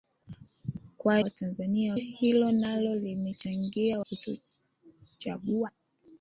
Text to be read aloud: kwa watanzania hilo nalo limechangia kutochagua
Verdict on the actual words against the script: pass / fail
pass